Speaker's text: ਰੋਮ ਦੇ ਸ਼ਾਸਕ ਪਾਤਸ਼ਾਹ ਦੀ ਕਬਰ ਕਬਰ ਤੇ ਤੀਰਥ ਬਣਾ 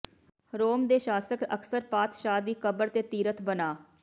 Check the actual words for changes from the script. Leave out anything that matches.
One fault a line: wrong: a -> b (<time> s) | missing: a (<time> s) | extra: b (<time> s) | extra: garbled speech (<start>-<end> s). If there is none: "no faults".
extra: ਅਕਸਰ (1.4 s)
missing: ਕਬਰ (2.9 s)